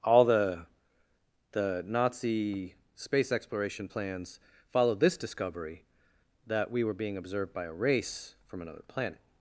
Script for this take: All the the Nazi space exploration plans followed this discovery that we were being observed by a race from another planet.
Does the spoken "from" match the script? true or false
true